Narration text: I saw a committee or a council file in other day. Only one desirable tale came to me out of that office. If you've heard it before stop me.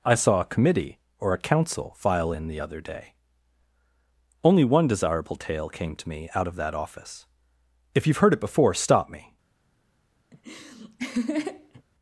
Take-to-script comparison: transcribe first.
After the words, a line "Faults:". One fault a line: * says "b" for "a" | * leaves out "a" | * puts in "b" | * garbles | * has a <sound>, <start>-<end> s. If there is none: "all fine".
I saw a committee or a council file in the other day. Only one desirable tale came to me out of that office. If you've heard it before stop me.
Faults:
* puts in "the"
* has a laugh, 10.3-11.8 s